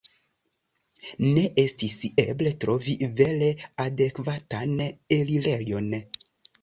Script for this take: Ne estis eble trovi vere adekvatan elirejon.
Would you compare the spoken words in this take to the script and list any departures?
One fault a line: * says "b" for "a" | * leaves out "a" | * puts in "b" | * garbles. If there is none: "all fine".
all fine